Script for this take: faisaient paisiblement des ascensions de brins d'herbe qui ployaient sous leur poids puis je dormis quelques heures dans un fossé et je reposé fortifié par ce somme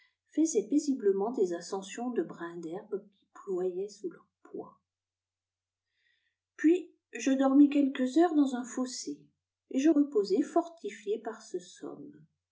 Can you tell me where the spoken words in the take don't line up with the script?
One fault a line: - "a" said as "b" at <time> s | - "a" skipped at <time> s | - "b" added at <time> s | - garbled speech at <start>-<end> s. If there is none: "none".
none